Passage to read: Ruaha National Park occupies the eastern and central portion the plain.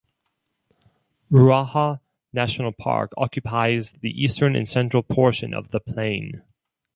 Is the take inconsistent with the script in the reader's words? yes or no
yes